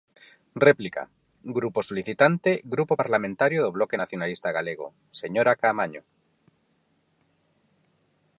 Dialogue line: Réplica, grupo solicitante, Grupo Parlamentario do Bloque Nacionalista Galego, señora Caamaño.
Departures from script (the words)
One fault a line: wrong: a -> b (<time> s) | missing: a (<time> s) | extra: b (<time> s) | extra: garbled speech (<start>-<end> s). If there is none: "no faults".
no faults